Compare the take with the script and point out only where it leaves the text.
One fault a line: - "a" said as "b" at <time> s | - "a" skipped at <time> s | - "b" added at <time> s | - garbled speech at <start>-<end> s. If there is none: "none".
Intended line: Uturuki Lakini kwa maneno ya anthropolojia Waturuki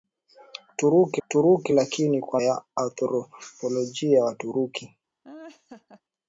- "uturuki" added at 1.2 s
- "maneno" skipped at 2.4 s